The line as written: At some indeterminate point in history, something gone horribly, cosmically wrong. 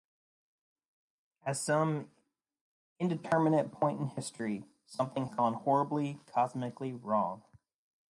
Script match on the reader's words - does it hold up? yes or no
yes